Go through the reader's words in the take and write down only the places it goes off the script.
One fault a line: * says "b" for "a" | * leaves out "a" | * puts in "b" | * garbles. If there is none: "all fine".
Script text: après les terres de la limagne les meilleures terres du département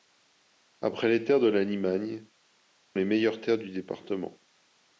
all fine